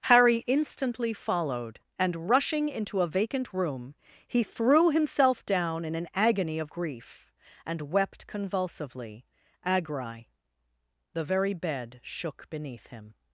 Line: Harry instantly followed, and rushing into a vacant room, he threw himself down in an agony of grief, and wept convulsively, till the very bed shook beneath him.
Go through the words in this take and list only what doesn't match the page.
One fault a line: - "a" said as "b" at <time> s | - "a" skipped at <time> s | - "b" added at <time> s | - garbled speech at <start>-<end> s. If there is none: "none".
- "till" said as "agri" at 9.6 s